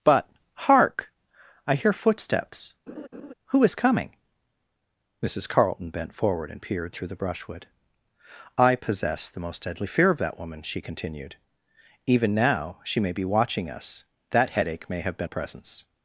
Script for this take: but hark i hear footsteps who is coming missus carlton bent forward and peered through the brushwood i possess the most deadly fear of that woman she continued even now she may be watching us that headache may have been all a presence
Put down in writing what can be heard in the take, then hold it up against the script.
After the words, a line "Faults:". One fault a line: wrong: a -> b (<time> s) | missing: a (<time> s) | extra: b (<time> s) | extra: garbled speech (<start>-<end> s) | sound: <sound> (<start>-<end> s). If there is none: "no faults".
but hark i hear footsteps who is coming missus carlton bent forward and peered through the brushwood i possess the most deadly fear of that woman she continued even now she may be watching us that headache may have been a presence
Faults:
sound: laugh (2.9-3.3 s)
missing: all (15.3 s)